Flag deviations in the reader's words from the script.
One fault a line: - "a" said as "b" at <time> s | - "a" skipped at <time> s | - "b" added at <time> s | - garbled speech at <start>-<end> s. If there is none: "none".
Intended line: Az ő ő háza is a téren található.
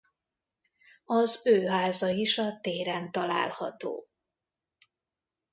- "ő" skipped at 1.6 s